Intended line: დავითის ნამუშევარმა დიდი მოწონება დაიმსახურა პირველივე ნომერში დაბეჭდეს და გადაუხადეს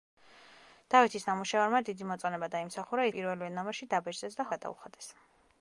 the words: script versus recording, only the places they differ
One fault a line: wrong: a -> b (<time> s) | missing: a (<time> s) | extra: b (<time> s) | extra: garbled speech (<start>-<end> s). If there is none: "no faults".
no faults